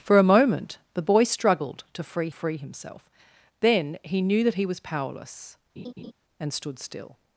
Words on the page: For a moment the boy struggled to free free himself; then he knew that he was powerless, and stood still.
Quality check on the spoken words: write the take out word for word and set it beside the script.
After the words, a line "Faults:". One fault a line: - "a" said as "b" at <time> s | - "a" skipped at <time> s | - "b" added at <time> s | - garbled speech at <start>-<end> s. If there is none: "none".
For a moment the boy struggled to free free himself; then he knew that he was powerless, and stood still.
Faults:
none